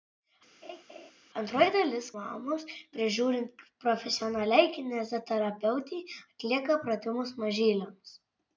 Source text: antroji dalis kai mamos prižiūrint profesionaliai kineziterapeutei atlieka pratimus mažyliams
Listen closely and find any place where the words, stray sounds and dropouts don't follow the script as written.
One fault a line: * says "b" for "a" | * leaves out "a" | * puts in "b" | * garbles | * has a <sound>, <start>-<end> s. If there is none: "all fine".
* has a laugh, 0.6-1.1 s
* leaves out "kai"